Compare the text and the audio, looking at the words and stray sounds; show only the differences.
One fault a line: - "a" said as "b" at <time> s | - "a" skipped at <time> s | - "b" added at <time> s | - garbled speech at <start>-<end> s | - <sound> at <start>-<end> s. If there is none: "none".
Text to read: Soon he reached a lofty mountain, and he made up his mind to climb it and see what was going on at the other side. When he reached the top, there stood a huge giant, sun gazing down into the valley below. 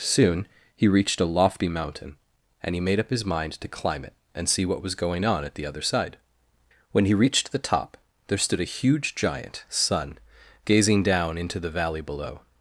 none